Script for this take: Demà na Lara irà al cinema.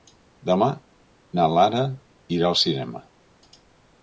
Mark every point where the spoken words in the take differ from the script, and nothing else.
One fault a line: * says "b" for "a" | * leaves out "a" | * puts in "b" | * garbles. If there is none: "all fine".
all fine